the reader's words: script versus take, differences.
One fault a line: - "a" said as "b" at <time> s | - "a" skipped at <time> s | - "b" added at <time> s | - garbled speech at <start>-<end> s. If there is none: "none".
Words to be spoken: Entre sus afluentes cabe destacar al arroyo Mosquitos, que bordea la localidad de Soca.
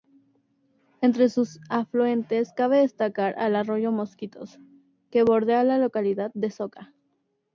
none